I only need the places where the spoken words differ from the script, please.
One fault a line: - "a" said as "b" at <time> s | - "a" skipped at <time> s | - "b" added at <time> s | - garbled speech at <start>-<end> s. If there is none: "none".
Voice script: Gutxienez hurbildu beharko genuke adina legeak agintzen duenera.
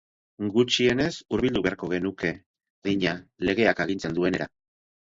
none